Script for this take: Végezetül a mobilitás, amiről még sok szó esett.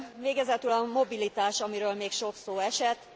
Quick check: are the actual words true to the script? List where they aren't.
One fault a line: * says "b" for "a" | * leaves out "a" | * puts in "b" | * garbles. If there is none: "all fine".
all fine